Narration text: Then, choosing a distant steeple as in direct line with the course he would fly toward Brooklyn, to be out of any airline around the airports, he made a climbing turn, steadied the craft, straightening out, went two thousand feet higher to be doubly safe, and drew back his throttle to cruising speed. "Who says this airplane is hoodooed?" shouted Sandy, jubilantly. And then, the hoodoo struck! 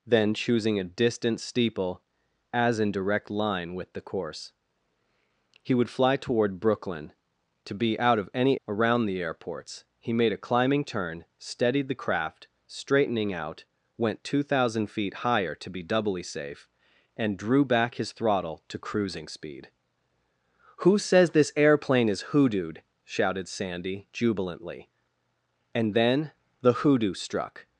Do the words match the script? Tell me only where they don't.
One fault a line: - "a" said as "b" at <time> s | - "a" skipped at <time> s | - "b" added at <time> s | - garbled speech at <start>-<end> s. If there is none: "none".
- "airline" skipped at 8.6 s